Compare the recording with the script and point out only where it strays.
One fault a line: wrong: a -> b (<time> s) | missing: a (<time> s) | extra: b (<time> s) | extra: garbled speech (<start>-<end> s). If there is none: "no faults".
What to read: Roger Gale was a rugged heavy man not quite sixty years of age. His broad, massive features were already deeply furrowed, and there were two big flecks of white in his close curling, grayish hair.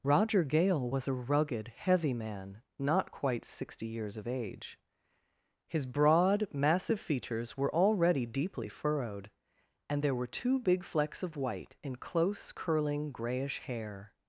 missing: his (11.9 s)